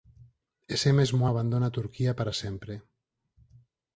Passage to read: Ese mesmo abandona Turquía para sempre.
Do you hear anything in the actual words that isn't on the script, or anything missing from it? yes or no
no